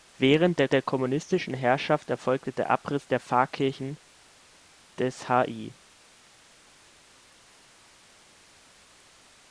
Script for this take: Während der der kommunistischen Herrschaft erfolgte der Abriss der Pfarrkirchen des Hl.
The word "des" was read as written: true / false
true